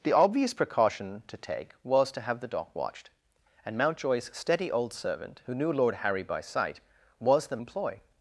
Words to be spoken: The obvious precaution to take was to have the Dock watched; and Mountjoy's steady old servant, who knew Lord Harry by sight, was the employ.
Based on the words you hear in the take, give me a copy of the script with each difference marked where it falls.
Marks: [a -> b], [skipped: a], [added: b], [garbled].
The obvious precaution to take was to have the Dock watched; and Mountjoy's steady old servant, who knew Lord Harry by sight, was the employ.